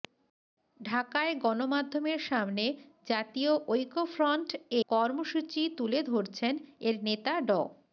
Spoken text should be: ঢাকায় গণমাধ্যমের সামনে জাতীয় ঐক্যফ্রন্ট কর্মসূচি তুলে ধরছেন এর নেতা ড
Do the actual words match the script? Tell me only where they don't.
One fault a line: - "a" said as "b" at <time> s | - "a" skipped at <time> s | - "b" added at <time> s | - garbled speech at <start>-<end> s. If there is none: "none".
none